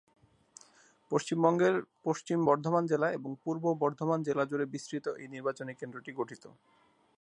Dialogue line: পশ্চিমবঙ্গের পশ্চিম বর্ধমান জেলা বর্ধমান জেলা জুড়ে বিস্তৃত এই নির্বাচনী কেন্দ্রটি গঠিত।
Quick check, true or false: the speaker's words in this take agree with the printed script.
false